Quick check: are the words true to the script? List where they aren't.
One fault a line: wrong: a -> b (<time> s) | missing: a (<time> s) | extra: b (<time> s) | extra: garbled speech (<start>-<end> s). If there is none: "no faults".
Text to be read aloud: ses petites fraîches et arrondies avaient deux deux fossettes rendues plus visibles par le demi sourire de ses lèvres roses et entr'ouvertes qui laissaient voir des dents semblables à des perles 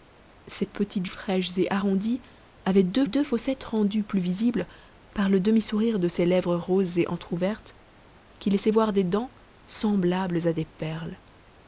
no faults